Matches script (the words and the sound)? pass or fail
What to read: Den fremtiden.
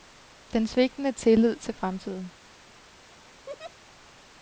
fail